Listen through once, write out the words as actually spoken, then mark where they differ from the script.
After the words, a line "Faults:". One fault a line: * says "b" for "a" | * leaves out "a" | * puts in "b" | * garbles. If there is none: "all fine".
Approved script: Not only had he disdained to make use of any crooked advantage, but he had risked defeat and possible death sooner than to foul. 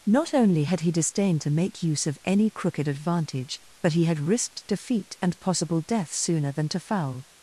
Not only had he disdained to make use of any crooked advantage, but he had risked defeat and possible death sooner than to foul.
Faults:
all fine